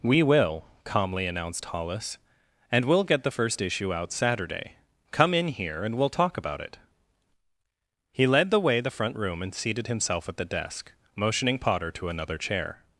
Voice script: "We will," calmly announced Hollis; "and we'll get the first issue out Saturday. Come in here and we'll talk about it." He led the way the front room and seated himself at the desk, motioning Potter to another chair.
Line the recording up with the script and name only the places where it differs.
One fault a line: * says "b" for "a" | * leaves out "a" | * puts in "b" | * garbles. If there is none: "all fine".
all fine